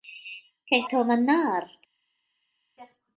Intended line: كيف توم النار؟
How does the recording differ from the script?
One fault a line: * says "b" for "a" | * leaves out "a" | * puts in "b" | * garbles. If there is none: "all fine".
all fine